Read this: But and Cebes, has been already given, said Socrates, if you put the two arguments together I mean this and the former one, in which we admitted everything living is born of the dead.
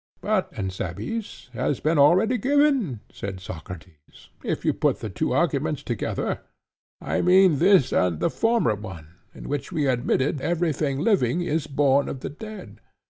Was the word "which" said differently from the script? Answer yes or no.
no